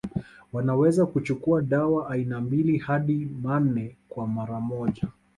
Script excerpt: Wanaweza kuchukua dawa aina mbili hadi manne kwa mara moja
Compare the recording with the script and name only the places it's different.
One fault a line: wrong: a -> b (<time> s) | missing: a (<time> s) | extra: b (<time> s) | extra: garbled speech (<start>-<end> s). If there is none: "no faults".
no faults